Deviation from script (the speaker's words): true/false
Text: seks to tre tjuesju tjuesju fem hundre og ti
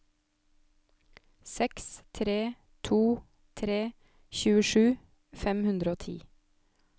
true